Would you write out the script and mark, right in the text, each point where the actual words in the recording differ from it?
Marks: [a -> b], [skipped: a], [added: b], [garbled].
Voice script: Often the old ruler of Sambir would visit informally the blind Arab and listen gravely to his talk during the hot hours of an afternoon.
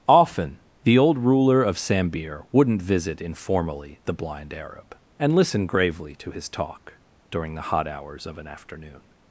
Often the old ruler of Sambir [would -> wouldn't] visit informally the blind Arab and listen gravely to his talk during the hot hours of an afternoon.